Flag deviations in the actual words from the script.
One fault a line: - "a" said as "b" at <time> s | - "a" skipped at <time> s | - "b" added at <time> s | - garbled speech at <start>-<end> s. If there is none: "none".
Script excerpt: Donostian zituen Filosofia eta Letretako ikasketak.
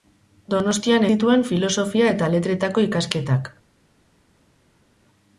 none